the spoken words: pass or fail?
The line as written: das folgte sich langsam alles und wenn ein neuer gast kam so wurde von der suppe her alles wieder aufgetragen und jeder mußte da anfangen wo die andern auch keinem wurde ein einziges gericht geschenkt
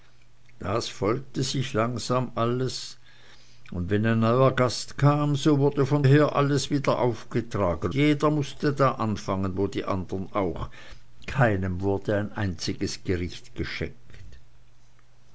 fail